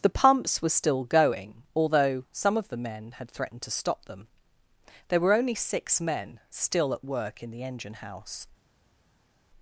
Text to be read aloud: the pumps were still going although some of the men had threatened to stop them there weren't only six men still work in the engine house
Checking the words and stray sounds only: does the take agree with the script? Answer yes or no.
no